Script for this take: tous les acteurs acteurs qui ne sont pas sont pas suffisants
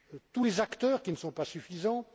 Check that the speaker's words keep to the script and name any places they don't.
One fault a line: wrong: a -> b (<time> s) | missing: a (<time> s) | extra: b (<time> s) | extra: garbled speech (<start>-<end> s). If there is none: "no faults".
missing: acteurs (1.0 s)
missing: sont pas (1.5 s)